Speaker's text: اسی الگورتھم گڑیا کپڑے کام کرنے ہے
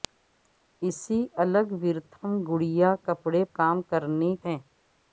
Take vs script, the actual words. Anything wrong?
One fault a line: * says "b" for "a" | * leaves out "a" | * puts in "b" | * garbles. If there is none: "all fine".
all fine